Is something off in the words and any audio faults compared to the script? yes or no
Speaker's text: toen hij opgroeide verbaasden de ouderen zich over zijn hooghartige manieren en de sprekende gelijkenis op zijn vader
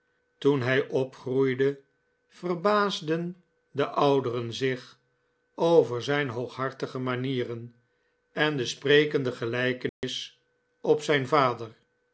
yes